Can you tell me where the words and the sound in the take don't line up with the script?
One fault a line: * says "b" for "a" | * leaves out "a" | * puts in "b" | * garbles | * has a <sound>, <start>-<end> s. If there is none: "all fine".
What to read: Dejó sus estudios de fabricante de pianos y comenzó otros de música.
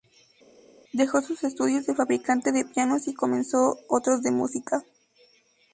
all fine